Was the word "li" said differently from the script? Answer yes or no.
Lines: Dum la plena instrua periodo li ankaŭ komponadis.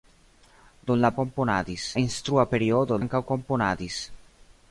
yes